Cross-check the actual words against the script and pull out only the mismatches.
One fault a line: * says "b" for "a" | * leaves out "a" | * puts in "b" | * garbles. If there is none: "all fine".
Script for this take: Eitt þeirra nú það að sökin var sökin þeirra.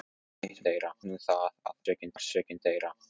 all fine